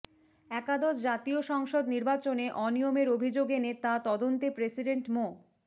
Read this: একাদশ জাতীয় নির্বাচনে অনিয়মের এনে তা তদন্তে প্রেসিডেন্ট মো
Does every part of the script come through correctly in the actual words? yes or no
no